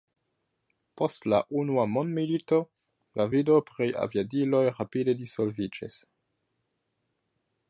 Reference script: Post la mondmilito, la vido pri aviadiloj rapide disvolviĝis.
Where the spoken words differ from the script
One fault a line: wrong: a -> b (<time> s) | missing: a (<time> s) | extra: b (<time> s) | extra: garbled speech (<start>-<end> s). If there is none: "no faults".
extra: unua (1.6 s)